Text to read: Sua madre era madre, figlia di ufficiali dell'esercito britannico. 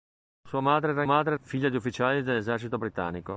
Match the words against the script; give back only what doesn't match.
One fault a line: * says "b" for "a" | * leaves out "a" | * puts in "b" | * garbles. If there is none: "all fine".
all fine